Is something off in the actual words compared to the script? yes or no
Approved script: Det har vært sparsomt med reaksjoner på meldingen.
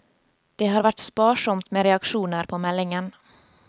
no